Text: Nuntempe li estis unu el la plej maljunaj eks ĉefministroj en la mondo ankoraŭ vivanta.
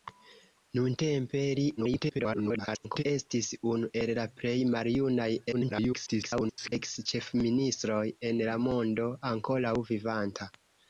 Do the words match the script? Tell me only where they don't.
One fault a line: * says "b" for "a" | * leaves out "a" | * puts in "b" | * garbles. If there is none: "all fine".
* garbles
* garbles